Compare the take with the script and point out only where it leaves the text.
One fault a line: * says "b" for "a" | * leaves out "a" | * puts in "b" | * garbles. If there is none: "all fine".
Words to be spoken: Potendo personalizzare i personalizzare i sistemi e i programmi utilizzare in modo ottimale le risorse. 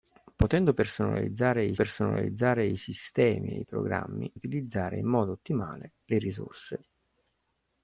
all fine